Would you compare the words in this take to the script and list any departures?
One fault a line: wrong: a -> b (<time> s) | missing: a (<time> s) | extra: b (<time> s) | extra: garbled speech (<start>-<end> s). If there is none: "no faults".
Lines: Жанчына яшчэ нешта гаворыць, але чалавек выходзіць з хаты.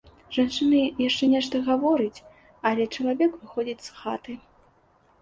no faults